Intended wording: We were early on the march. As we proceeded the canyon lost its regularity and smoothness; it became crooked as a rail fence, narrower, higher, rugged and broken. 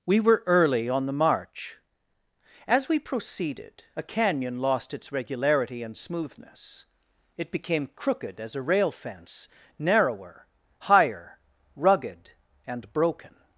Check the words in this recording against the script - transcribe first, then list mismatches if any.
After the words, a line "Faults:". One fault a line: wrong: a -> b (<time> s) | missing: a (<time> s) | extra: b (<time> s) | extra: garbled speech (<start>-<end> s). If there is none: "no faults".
We were early on the march. As we proceeded a canyon lost its regularity and smoothness; it became crooked as a rail fence, narrower, higher, rugged and broken.
Faults:
wrong: the -> a (4.0 s)